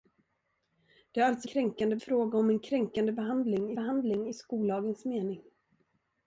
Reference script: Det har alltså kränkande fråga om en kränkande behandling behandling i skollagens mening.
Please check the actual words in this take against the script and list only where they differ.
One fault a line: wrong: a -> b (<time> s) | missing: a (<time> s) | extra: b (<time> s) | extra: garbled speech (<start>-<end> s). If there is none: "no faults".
no faults